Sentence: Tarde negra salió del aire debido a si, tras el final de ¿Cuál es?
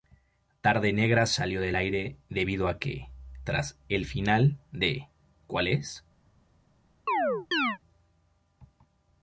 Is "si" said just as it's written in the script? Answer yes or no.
no